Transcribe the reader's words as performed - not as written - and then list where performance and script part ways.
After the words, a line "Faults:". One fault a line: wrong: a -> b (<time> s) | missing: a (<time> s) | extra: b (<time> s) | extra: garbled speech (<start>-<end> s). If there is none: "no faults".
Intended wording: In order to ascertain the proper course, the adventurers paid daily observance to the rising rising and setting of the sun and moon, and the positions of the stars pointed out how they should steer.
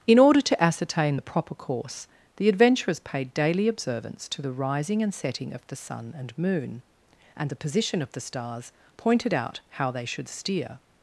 In order to ascertain the proper course, the adventurers paid daily observance to the rising and setting of the sun and moon, and the position of the stars pointed out how they should steer.
Faults:
missing: rising (5.0 s)
wrong: positions -> position (7.6 s)